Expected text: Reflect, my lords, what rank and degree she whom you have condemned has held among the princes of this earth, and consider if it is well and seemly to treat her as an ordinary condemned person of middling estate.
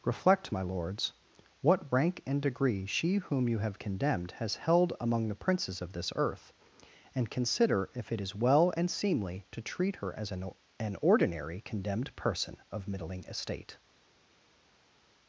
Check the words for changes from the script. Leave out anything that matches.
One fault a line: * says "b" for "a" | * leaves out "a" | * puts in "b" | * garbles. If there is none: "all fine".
* puts in "an"